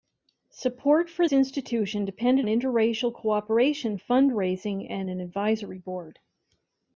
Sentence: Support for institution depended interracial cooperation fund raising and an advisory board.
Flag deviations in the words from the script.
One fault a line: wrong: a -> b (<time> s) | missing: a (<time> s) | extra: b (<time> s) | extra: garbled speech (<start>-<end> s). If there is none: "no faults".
no faults